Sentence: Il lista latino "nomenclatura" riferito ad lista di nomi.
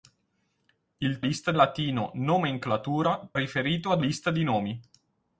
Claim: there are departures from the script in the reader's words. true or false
false